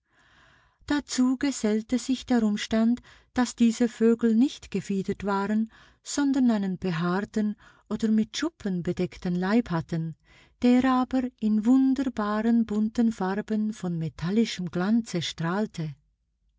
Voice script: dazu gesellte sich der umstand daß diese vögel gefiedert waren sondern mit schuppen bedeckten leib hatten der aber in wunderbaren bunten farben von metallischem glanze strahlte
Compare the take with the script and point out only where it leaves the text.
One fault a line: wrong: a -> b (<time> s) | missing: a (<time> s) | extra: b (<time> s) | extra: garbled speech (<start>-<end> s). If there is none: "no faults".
extra: nicht (4.3 s)
extra: einen behaarten oder (6.5 s)